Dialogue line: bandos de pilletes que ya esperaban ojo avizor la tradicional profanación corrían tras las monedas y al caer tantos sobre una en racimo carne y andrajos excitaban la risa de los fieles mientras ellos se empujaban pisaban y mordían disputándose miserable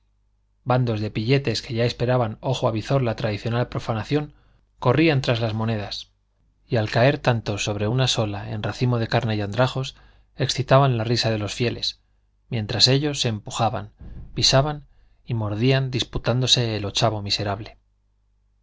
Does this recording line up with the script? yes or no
no